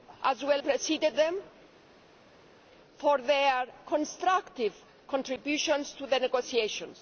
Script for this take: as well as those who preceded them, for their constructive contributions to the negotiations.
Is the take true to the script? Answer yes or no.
no